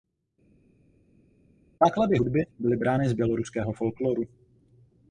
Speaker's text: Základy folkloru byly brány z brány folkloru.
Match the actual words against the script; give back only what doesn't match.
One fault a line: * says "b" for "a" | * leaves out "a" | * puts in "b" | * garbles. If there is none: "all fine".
* says "hudby" for "folkloru"
* says "běloruského" for "brány"